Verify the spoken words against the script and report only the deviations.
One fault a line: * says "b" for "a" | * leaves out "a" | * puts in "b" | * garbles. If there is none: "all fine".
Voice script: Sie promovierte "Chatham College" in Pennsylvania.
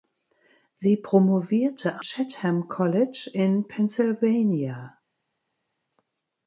all fine